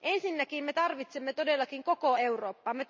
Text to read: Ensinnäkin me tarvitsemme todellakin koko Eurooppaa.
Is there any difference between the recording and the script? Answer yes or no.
no